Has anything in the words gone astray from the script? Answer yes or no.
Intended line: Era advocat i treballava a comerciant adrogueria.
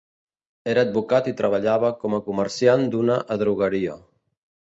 yes